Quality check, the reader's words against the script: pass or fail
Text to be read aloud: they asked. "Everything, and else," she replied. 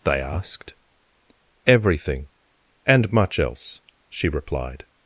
fail